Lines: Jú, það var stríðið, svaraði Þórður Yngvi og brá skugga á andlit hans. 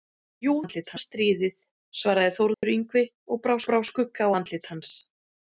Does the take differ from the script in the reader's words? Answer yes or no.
yes